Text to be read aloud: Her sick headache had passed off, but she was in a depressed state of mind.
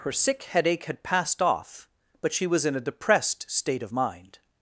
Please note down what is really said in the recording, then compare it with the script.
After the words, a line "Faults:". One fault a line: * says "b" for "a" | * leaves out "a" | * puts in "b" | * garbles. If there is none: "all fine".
Her sick headache had passed off, but she was in a depressed state of mind.
Faults:
all fine